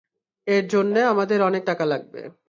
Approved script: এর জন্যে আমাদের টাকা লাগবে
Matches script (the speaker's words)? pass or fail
fail